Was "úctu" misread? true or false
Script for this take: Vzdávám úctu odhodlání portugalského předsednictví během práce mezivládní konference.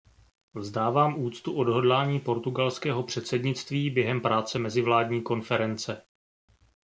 false